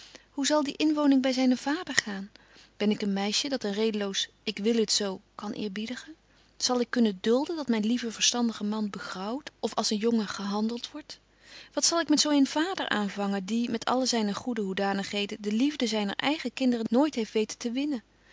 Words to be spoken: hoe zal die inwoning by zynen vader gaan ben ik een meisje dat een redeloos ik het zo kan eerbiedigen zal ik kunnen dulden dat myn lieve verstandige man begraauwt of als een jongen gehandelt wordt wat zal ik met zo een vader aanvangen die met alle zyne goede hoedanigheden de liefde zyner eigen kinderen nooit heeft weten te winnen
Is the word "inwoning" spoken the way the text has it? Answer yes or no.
yes